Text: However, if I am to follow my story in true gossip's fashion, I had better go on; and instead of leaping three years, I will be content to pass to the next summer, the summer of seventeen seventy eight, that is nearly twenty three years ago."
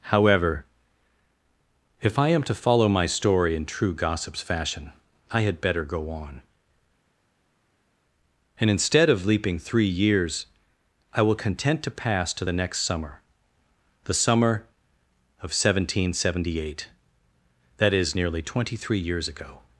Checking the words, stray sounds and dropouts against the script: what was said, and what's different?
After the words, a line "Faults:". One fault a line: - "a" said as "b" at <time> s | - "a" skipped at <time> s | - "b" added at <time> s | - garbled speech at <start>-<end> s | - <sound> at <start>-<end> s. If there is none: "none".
However, if I am to follow my story in true gossip's fashion, I had better go on; and instead of leaping three years, I will content to pass to the next summer, the summer of seventeen seventy eight, that is nearly twenty three years ago."
Faults:
- "be" skipped at 11.3 s